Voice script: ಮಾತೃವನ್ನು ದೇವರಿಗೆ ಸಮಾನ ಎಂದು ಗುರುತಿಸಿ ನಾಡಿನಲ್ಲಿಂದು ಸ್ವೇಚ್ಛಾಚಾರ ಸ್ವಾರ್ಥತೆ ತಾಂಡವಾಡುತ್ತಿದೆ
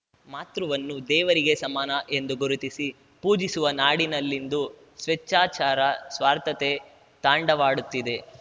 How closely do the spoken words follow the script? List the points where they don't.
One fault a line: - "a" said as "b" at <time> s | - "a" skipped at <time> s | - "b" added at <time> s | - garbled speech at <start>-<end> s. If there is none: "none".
- "ಪೂಜಿಸುವ" added at 3.2 s